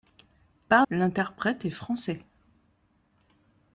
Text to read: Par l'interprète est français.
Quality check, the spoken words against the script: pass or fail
pass